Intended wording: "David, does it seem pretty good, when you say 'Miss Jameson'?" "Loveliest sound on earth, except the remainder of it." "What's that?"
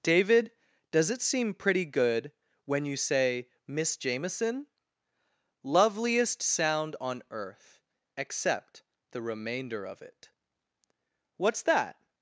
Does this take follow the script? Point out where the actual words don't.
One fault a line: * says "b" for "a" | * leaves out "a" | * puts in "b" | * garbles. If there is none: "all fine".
all fine